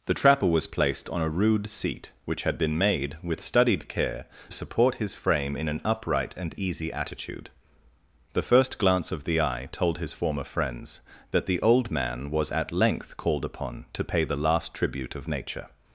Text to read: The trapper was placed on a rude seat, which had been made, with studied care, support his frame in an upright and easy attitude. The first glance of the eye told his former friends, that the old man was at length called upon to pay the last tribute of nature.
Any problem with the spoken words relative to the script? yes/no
no